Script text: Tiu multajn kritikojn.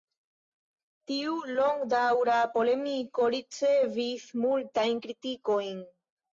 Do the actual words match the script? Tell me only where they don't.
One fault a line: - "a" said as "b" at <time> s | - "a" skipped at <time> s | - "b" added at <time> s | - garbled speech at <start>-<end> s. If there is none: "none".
- "longdaŭra polemiko ricevis" added at 1.6 s